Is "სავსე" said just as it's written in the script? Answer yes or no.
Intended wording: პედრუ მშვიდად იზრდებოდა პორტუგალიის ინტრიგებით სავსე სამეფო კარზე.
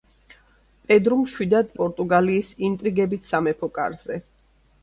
no